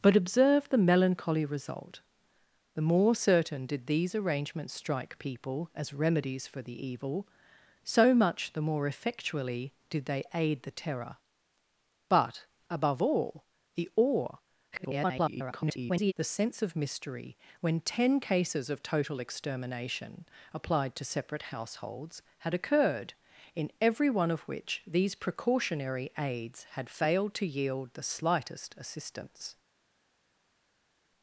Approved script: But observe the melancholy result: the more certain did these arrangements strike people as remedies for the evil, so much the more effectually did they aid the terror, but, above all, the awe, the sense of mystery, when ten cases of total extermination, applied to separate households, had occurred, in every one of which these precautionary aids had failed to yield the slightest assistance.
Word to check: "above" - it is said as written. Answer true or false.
true